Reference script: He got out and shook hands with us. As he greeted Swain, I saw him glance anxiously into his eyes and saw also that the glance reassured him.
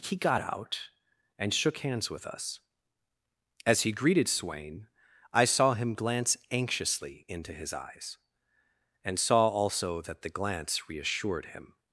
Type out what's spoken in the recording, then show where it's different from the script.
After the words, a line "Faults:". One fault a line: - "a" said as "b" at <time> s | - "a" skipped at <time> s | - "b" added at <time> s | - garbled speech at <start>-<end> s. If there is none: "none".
He got out and shook hands with us. As he greeted Swain, I saw him glance anxiously into his eyes and saw also that the glance reassured him.
Faults:
none